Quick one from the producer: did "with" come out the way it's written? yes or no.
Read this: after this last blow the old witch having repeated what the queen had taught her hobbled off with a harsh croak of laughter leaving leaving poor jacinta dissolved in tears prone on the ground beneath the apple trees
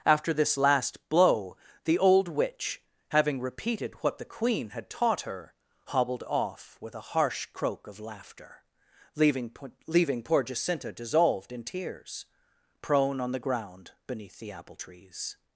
yes